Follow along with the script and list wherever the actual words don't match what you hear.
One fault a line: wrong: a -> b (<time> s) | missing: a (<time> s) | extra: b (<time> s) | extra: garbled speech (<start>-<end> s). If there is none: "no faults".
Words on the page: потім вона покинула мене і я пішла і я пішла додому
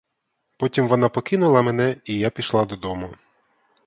missing: і я пішла (2.6 s)